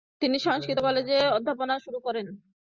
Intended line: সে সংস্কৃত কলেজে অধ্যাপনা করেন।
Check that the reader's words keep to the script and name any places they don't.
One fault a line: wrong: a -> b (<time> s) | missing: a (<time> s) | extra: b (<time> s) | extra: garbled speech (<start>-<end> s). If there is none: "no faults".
wrong: সে -> তিনি (0.2 s)
extra: শুরু (1.8 s)